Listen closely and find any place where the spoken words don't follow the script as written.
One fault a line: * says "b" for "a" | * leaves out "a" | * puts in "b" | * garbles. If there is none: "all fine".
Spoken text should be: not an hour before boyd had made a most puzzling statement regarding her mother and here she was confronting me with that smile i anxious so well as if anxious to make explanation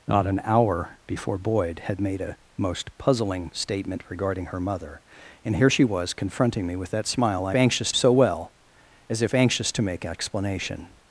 all fine